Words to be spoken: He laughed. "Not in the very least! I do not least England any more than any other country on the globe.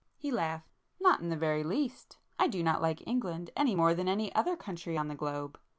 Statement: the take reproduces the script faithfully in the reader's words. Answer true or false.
false